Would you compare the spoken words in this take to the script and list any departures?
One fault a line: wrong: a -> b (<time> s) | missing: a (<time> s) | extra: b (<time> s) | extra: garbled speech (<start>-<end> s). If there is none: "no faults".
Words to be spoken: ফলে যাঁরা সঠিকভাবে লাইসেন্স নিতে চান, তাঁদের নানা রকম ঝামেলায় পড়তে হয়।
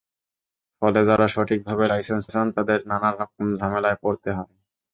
missing: নিতে (2.2 s)